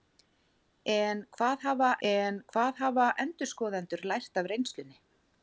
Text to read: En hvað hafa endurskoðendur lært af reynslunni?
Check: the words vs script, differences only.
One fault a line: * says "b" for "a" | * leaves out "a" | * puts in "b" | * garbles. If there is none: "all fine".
* puts in "en hvað hafa"